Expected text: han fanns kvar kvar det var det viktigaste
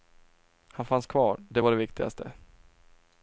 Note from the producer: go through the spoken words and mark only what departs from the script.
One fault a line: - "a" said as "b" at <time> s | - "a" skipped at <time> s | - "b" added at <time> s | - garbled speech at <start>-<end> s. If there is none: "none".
- "kvar" skipped at 1.4 s